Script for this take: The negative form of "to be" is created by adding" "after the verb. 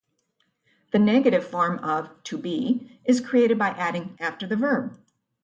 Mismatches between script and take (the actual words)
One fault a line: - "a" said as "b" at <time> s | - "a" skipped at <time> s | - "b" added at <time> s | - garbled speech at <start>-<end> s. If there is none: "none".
none